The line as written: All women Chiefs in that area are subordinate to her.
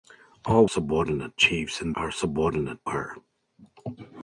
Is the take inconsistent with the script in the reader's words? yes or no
yes